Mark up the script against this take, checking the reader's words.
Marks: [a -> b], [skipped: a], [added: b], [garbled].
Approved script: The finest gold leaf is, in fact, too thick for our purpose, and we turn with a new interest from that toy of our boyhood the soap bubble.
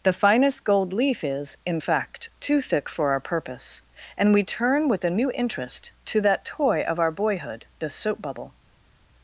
The finest gold leaf is, in fact, too thick for our purpose, and we turn with a new interest [from -> to] that toy of our boyhood the soap bubble.